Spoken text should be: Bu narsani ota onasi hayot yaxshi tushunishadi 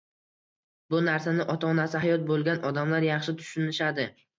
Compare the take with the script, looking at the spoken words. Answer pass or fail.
fail